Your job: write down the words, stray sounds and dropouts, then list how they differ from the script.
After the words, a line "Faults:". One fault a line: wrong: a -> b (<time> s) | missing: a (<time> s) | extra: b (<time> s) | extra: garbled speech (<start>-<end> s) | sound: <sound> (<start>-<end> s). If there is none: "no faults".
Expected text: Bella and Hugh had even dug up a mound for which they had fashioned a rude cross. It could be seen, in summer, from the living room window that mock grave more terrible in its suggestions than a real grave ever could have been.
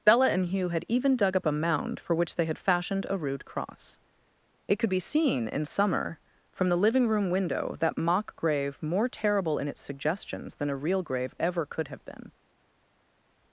Bella and Hugh had even dug up a mound for which they had fashioned a rude cross. It could be seen, in summer, from the living room window that mock grave more terrible in its suggestions than a real grave ever could have been.
Faults:
no faults